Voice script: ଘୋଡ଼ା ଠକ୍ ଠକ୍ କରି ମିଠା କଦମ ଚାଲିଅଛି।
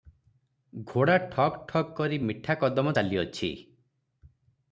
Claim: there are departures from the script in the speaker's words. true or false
false